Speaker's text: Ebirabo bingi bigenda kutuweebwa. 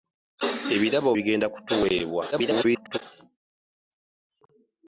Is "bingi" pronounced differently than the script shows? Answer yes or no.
yes